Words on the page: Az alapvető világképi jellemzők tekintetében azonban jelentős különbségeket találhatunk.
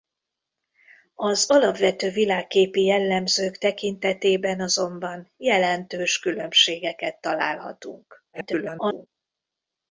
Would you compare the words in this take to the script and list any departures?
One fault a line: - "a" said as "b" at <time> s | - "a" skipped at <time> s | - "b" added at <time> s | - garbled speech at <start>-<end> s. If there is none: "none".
- garbled speech at 8.3-9.1 s